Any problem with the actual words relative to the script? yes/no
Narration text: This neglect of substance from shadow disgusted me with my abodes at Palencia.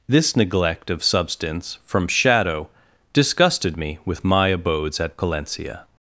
no